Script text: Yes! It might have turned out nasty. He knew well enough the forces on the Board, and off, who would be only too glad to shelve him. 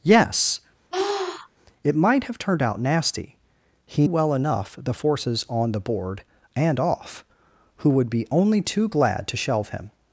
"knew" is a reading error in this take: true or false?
true